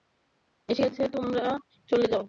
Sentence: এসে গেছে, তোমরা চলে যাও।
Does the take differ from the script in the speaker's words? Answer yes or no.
no